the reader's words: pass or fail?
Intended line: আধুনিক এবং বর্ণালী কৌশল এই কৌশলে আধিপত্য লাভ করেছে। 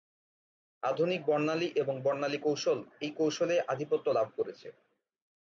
fail